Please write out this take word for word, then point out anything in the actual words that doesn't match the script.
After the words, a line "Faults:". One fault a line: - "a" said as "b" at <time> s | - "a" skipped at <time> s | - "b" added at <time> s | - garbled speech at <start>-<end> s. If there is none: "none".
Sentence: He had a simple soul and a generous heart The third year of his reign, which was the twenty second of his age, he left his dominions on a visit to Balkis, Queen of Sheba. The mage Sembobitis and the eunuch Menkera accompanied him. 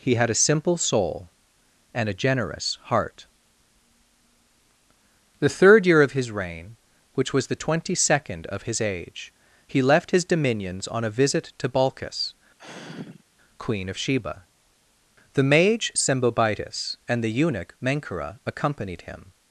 He had a simple soul and a generous heart The third year of his reign, which was the twenty second of his age, he left his dominions on a visit to Balkis, Queen of Sheba. The mage Sembobitis and the eunuch Menkera accompanied him.
Faults:
none